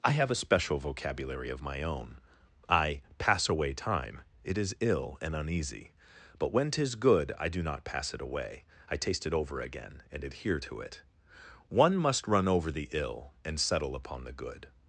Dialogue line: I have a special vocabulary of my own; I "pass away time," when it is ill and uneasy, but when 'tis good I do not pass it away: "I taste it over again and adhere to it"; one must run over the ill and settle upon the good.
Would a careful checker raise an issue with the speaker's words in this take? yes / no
yes